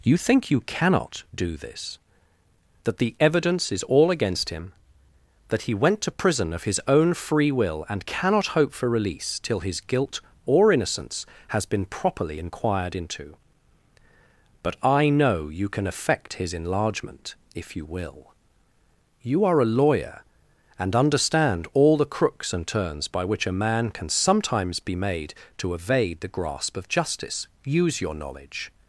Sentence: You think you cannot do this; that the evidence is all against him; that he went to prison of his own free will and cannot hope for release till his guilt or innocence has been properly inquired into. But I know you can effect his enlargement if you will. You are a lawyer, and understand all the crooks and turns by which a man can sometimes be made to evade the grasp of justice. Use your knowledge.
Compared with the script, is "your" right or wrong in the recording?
right